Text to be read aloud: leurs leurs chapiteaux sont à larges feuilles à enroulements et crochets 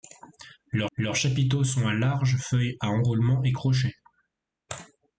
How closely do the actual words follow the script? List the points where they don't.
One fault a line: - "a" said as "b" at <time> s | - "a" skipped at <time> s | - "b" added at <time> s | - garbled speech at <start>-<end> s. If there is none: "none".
none